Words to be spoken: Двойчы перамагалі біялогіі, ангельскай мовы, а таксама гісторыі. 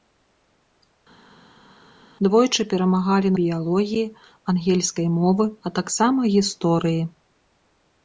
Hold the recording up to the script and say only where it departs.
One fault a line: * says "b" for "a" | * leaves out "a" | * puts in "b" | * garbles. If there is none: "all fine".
all fine